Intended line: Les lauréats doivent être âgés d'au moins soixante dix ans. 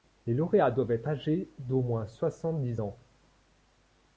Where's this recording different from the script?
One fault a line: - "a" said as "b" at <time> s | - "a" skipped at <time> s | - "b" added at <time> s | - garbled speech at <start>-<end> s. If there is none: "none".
none